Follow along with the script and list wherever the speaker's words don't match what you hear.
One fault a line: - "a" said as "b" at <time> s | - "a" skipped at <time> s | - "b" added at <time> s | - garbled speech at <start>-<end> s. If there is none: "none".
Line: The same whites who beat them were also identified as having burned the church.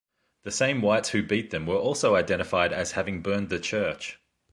none